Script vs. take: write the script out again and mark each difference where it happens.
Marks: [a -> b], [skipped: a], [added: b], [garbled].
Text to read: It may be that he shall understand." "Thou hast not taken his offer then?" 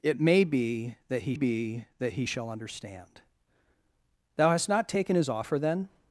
It may be that he [added: be that he] shall understand." "Thou hast not taken his offer then?"